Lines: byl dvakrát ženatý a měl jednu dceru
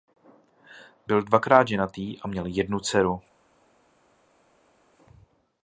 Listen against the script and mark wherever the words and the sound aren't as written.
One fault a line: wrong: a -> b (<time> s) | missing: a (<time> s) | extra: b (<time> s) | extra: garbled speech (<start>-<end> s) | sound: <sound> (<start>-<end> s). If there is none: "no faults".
no faults